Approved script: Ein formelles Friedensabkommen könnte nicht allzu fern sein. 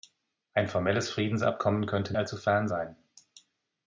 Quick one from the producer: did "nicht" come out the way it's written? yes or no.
no